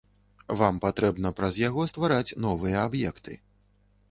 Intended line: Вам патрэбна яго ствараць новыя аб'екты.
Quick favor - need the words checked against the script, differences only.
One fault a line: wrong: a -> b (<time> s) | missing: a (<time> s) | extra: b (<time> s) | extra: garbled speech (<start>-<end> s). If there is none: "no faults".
extra: праз (1.4 s)